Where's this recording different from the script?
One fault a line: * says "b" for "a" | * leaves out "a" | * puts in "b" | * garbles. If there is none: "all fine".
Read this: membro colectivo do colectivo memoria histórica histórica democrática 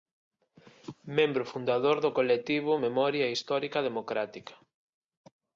* says "fundador" for "colectivo"
* leaves out "histórica"